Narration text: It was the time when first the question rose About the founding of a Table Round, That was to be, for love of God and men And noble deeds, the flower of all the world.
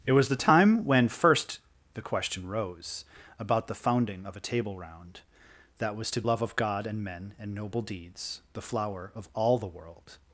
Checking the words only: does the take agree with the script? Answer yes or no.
no